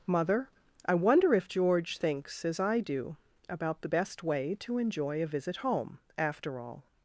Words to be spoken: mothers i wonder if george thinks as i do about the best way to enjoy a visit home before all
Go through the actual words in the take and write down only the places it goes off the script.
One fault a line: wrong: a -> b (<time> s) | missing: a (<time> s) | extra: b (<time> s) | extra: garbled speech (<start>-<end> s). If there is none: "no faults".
wrong: mothers -> mother (0.1 s)
wrong: before -> after (6.2 s)